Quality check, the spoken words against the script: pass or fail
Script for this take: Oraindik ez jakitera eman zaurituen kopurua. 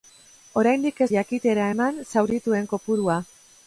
pass